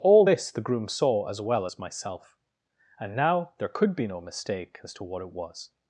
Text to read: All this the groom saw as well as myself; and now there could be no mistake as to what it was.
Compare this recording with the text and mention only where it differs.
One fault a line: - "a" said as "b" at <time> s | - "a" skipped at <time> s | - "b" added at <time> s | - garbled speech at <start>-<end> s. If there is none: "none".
none